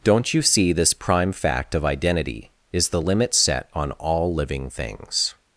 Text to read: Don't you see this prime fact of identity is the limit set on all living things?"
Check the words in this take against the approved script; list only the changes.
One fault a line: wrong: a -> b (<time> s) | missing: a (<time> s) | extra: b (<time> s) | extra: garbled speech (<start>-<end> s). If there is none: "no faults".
no faults